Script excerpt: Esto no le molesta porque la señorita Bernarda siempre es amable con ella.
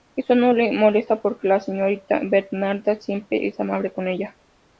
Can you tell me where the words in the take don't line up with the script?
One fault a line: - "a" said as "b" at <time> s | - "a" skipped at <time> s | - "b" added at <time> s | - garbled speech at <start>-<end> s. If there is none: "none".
none